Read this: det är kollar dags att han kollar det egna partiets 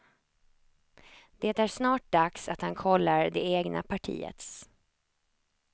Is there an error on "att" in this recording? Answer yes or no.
no